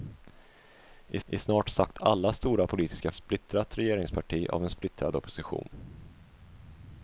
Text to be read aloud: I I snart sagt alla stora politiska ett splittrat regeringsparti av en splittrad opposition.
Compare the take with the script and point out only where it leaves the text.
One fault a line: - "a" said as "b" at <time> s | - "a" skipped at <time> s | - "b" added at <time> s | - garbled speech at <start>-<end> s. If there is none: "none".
none